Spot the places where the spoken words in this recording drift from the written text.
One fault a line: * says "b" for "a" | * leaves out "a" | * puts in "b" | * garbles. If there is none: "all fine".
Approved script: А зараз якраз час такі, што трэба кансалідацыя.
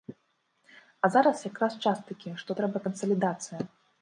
all fine